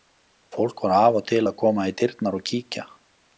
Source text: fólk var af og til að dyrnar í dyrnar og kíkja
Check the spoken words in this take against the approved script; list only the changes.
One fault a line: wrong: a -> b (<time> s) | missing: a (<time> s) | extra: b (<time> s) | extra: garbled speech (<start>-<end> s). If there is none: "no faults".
wrong: dyrnar -> koma (1.6 s)